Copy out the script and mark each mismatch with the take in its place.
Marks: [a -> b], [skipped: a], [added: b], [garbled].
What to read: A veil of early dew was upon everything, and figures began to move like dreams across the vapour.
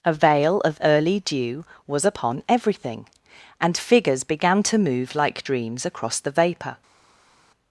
A veil of early dew was upon everything, and figures began to move like dreams across the vapour.